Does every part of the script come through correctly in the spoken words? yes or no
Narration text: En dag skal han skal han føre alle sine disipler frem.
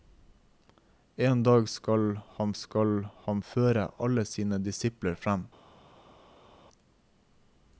yes